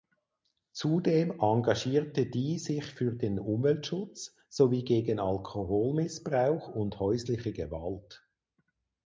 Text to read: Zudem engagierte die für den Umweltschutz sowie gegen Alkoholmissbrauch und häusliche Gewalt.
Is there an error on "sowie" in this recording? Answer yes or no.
no